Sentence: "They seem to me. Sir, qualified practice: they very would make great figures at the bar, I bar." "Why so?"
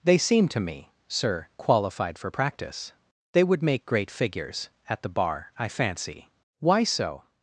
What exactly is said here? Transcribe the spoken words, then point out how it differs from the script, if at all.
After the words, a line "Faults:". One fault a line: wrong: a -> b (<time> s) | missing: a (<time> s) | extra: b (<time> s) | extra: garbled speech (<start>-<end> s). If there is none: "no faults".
"They seem to me. Sir, qualified for practice: they would make great figures at the bar, I fancy." "Why so?"
Faults:
extra: for (2.2 s)
missing: very (3.4 s)
wrong: bar -> fancy (5.7 s)